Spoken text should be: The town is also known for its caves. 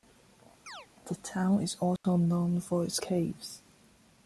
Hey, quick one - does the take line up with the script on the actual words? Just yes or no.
yes